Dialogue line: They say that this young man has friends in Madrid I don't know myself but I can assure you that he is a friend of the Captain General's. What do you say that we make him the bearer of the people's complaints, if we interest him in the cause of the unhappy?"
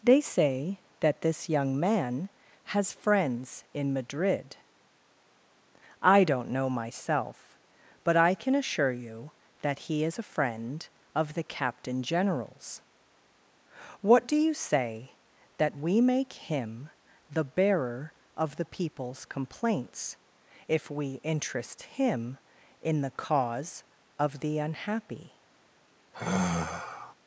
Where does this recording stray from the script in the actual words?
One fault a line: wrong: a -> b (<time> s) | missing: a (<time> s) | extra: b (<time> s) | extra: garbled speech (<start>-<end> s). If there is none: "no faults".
no faults